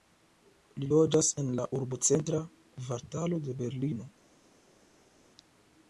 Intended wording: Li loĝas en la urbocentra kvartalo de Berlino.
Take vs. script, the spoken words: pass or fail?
pass